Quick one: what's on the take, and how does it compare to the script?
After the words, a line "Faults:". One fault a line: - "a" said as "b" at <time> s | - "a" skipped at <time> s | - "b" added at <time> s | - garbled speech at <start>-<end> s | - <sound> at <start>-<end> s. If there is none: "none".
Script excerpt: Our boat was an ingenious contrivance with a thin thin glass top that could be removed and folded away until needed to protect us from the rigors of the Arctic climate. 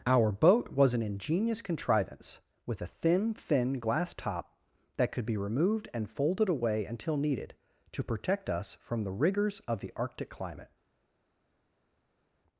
Our boat was an ingenious contrivance with a thin thin glass top that could be removed and folded away until needed to protect us from the rigors of the Arctic climate.
Faults:
none